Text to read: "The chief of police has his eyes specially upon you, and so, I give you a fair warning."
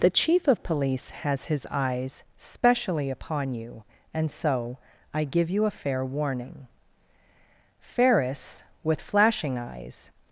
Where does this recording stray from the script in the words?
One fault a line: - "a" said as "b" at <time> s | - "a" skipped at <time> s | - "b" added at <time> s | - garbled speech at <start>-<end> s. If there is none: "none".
- "Ferris with flashing eyes" added at 7.8 s